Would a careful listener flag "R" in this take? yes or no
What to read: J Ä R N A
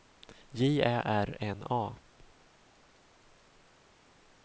no